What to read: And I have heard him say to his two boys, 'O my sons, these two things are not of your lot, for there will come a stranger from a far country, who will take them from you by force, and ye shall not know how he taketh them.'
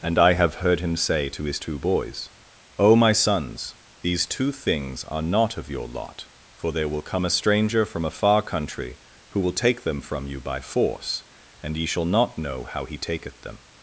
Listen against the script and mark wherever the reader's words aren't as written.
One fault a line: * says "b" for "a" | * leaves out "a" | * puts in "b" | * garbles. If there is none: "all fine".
all fine